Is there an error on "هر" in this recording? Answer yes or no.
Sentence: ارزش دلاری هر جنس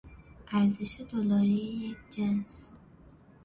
yes